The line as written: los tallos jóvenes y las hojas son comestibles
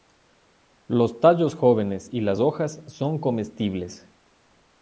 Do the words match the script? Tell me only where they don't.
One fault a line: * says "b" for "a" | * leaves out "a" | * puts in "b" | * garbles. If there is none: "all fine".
all fine